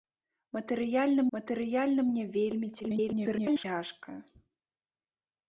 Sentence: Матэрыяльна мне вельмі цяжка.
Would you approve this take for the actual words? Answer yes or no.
no